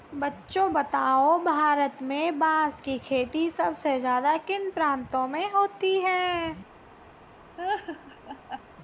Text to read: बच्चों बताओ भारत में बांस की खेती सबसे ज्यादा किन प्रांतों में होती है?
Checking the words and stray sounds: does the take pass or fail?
fail